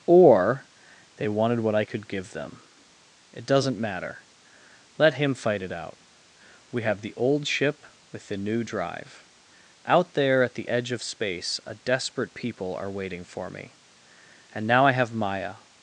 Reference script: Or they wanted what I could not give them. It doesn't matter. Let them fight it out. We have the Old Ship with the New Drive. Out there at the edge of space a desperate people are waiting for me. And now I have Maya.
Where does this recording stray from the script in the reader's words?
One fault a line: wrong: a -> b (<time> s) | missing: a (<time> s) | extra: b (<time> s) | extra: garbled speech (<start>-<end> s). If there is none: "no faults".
missing: not (2.1 s)
wrong: them -> him (5.2 s)